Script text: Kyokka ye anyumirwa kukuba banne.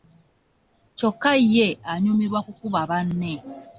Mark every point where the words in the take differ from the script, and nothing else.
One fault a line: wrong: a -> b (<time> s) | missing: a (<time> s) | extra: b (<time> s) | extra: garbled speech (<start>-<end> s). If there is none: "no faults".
no faults